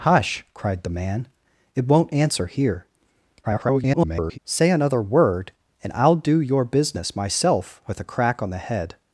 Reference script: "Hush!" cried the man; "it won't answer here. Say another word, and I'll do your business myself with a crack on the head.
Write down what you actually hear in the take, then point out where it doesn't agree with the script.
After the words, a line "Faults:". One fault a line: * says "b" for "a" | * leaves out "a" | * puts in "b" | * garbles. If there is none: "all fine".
"Hush!" cried the man; "it won't answer here. [garbled] Say another word, and I'll do your business myself with a crack on the head.
Faults:
* garbles